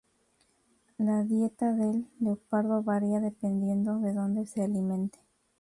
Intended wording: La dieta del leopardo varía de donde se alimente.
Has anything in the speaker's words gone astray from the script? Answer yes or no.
yes